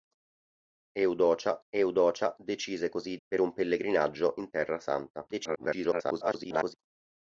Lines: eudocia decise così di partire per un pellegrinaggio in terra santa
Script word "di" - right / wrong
wrong